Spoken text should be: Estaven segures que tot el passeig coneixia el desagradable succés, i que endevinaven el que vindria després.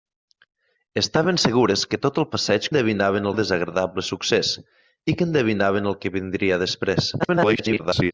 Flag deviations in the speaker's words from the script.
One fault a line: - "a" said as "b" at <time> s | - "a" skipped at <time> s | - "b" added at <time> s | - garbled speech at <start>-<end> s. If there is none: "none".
- "coneixia" said as "endevinaven" at 2.7 s
- garbled speech at 7.2-8.1 s